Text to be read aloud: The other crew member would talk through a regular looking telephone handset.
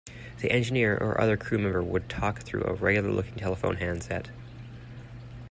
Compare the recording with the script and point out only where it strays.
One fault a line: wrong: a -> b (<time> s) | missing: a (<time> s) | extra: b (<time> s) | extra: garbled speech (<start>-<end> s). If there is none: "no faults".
extra: engineer or (0.5 s)